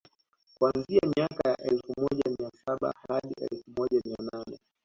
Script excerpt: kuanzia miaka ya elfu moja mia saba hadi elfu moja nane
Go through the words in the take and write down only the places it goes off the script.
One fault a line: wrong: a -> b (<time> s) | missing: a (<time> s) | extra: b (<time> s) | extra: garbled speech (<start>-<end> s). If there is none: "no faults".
extra: mia (4.1 s)